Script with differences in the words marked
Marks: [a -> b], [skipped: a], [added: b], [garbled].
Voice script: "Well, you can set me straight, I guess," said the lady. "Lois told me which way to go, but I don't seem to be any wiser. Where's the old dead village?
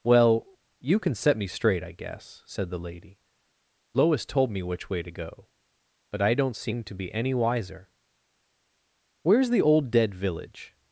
"Well, you can set me straight, I guess," said the lady. "Lois told me which way to go, but I don't seem to be any wiser. Where's the old dead village?